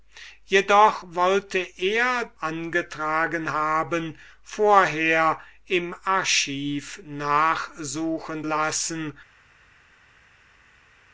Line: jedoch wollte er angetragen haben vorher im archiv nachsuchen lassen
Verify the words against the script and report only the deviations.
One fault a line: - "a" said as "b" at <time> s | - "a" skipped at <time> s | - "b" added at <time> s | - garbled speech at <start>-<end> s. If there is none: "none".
none